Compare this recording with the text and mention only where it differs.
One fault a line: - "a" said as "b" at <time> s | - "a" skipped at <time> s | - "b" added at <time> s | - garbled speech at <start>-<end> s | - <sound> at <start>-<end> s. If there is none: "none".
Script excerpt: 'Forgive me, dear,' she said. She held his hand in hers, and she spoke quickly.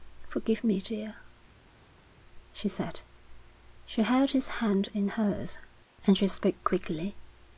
none